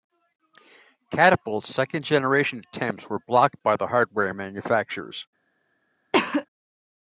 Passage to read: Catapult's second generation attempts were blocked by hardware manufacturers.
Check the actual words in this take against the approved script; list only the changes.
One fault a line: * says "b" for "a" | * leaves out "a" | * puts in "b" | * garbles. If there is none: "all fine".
* puts in "the"